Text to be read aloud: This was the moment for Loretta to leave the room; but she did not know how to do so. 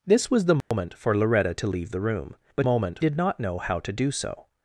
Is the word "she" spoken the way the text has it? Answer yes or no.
no